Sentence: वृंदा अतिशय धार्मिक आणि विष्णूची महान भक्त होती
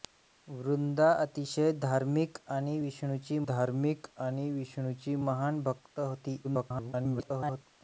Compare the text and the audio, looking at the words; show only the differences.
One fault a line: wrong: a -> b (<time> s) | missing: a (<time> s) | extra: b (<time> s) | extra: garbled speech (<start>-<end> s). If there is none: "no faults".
extra: धार्मिक आणि विष्णूची (3.5 s)
extra: garbled speech (6.4-7.7 s)